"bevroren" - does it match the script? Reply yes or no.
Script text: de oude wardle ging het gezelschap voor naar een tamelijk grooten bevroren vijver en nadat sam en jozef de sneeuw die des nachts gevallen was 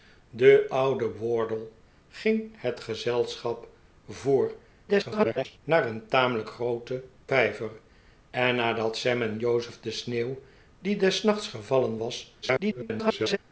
no